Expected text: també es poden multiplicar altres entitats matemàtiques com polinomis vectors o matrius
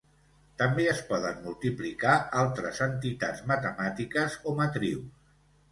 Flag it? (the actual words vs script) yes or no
yes